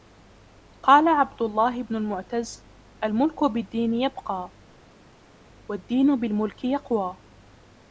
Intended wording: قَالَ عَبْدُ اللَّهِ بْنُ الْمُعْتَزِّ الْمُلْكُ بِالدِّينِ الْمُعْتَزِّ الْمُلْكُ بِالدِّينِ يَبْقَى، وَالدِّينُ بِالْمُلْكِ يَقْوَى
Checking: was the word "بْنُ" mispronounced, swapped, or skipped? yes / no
no